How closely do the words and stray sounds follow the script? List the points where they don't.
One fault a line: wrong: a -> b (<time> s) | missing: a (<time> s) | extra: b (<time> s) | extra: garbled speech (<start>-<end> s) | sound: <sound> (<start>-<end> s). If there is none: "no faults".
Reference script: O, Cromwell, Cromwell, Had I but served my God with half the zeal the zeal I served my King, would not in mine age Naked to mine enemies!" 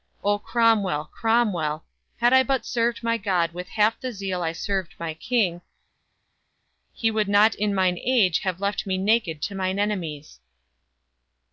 missing: the zeal (4.4 s)
extra: he (6.9 s)
extra: Have left me (8.4 s)